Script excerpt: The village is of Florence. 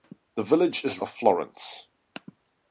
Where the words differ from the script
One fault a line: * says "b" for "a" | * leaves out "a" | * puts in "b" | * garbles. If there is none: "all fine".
all fine